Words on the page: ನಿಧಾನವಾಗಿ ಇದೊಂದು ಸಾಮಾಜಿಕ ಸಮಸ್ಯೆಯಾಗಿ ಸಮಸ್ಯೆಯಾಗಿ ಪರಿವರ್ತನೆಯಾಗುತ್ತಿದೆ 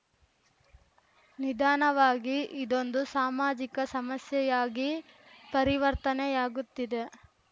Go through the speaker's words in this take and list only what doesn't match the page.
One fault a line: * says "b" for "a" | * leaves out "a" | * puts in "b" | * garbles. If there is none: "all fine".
* leaves out "ಸಮಸ್ಯೆಯಾಗಿ"